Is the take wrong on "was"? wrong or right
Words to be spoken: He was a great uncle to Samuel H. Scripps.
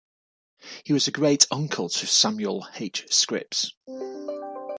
right